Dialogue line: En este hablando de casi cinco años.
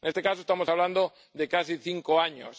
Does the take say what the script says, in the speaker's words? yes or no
no